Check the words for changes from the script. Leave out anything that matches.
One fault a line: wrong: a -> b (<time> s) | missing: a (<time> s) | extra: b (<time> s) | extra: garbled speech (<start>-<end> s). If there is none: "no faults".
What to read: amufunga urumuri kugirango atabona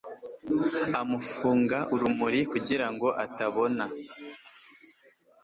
no faults